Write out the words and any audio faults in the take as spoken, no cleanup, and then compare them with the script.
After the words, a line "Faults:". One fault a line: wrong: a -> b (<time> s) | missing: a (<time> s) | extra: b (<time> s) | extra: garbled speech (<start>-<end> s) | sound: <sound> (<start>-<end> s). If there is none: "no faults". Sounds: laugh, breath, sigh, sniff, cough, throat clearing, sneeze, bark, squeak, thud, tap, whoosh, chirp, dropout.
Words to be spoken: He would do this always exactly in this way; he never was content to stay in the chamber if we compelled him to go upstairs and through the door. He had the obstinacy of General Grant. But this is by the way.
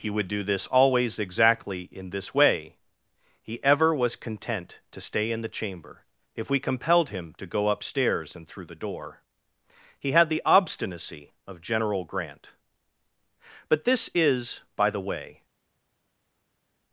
He would do this always exactly in this way; he ever was content to stay in the chamber if we compelled him to go upstairs and through the door. He had the obstinacy of General Grant. But this is by the way.
Faults:
wrong: never -> ever (3.6 s)